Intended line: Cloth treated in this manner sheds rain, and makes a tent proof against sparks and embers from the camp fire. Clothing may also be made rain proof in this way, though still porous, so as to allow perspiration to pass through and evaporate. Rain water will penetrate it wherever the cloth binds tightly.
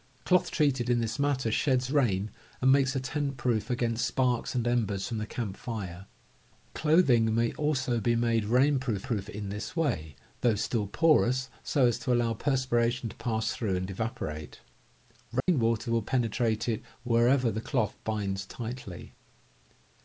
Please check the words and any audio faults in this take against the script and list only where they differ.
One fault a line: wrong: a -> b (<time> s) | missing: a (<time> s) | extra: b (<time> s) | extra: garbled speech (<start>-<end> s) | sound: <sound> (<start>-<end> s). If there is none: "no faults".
extra: proof (9.0 s)
sound: dropout (15.4-15.5 s)